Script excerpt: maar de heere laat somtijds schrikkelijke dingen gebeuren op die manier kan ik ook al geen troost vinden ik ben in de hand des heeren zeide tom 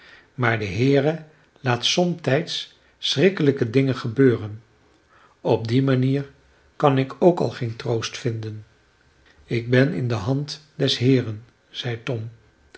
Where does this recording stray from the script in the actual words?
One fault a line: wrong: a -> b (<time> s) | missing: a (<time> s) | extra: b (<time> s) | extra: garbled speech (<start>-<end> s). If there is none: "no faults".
no faults